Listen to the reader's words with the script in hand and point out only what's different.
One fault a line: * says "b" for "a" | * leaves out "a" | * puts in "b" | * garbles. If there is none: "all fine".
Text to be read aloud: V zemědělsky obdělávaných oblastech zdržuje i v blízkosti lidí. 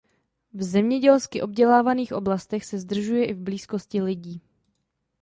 * puts in "se"